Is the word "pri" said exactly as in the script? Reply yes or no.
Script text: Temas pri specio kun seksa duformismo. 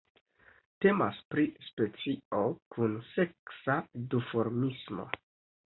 yes